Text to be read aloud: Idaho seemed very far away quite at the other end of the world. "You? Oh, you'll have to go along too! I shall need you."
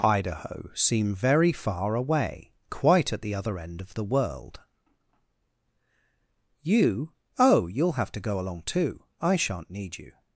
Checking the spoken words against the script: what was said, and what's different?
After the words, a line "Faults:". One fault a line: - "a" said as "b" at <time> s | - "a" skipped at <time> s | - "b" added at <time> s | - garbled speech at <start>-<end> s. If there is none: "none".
Idaho seem very far away quite at the other end of the world. "You? Oh, you'll have to go along too! I shan't need you."
Faults:
- "seemed" said as "seem" at 0.7 s
- "shall" said as "shan't" at 9.3 s